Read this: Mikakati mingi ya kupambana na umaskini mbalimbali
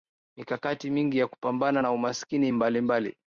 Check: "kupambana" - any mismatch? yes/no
no